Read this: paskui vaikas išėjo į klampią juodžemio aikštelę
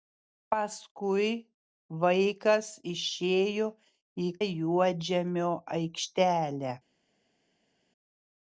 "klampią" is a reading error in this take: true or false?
true